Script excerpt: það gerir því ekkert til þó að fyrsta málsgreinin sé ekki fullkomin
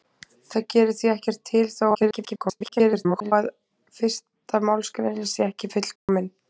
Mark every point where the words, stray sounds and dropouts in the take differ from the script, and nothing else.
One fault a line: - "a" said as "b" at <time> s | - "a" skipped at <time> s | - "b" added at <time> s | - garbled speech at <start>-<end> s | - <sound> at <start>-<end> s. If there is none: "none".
- garbled speech at 1.9-3.3 s
- dropout at 6.0-6.1 s